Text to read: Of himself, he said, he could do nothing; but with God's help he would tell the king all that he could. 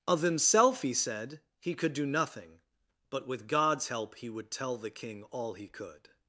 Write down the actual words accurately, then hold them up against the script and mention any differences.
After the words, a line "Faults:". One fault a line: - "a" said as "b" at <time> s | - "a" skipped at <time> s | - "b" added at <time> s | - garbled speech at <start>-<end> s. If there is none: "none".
Of himself, he said, he could do nothing; but with God's help he would tell the king all he could.
Faults:
- "that" skipped at 5.5 s